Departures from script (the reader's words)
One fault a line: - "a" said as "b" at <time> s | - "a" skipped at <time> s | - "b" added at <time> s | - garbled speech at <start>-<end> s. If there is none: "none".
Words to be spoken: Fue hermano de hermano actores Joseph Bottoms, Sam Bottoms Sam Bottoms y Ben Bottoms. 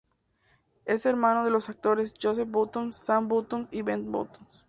- "Fue" said as "Es" at 0.8 s
- "hermano" said as "los" at 1.5 s
- "Sam Bottoms" skipped at 3.7 s